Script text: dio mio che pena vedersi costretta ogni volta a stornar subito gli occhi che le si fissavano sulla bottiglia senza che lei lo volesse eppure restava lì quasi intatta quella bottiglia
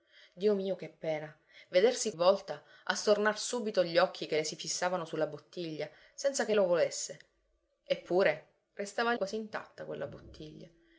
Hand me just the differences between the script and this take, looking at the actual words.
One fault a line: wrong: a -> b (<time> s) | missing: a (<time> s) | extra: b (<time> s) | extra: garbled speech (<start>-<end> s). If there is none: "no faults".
missing: costretta ogni (2.1 s)
missing: lei (6.5 s)
missing: lì (9.1 s)